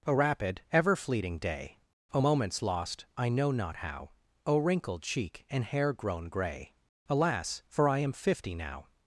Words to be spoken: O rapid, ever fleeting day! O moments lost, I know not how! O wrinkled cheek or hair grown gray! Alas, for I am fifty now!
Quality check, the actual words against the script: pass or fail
fail